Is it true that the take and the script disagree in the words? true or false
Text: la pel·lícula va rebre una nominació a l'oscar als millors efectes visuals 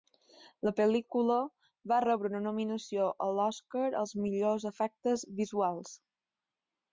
false